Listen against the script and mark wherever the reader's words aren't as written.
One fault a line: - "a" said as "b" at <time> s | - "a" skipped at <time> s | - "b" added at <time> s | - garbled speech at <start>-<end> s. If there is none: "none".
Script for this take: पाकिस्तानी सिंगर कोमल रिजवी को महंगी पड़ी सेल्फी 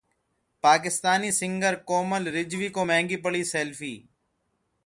none